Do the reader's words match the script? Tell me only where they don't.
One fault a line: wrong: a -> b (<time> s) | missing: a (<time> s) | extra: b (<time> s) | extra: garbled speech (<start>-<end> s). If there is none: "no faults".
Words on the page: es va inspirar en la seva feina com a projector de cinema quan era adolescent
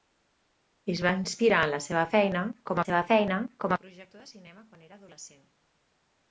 extra: seva feina com (2.9 s)